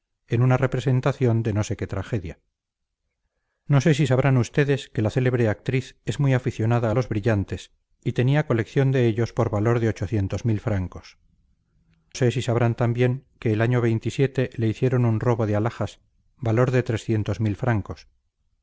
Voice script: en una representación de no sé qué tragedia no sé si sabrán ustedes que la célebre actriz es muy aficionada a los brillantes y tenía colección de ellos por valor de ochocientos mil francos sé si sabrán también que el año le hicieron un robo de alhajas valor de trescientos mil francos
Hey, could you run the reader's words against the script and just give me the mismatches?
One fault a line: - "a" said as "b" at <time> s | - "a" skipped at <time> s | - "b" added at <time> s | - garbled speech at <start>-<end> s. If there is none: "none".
none